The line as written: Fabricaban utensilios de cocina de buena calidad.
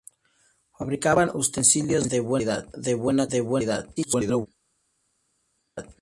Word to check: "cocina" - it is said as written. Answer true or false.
false